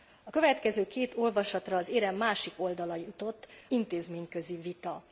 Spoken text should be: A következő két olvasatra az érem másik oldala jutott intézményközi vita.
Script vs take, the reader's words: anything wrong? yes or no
no